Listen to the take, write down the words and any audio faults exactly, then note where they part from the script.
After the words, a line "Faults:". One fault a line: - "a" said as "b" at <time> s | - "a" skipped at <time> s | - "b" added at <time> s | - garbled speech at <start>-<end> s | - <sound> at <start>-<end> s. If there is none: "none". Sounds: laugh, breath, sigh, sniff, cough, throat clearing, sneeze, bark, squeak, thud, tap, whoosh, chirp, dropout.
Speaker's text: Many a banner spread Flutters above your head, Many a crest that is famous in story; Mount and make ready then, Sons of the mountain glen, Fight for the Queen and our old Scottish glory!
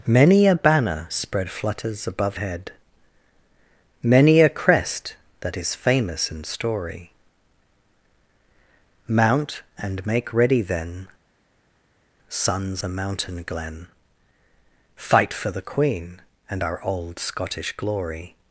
Many a banner spread Flutters above head, Many a crest that is famous in story; Mount and make ready then, Sons the mountain glen, Fight for the Queen and our old Scottish glory!
Faults:
- "your" skipped at 2.4 s
- "of" skipped at 12.8 s